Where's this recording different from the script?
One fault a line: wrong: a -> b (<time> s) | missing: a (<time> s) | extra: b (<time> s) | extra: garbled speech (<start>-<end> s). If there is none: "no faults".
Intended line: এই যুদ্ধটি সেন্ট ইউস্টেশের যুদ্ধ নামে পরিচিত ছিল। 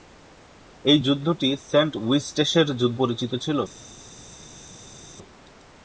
missing: নামে (3.0 s)